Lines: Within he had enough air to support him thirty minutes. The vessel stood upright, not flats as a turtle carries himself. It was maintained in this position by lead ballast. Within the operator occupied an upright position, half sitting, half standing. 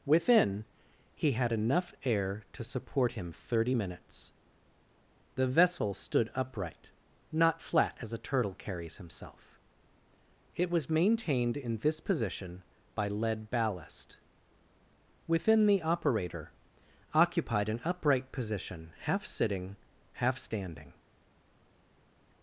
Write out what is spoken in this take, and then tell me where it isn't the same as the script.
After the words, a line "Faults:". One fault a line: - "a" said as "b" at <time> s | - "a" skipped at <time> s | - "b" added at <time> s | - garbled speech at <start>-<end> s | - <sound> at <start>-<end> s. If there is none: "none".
Within he had enough air to support him thirty minutes. The vessel stood upright, not flat as a turtle carries himself. It was maintained in this position by lead ballast. Within the operator occupied an upright position, half sitting, half standing.
Faults:
- "flats" said as "flat" at 7.6 s